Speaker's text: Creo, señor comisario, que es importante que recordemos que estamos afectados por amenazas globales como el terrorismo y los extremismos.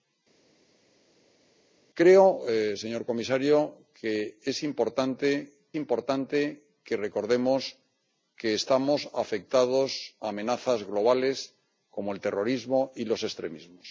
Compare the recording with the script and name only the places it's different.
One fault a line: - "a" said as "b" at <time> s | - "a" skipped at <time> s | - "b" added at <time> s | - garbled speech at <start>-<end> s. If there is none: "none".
- "importante" added at 5.8 s